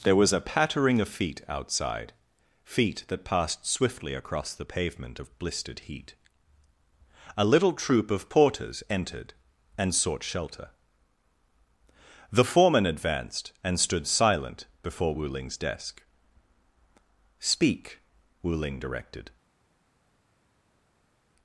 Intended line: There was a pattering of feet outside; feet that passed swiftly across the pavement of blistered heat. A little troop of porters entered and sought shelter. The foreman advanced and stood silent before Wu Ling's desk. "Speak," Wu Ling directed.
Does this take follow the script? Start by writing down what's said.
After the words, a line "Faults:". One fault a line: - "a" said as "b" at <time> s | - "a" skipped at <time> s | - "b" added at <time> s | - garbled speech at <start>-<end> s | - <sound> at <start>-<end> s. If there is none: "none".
There was a pattering of feet outside; feet that passed swiftly across the pavement of blistered heat. A little troop of porters entered and sought shelter. The foreman advanced and stood silent before Wu Ling's desk. "Speak," Wu Ling directed.
Faults:
none